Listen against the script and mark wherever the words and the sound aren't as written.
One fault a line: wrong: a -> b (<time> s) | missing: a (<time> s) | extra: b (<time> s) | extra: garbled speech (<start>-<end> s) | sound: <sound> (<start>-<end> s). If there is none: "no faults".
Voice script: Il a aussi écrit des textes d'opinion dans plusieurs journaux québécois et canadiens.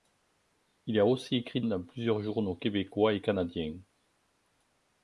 missing: des textes d'opinion (1.6 s)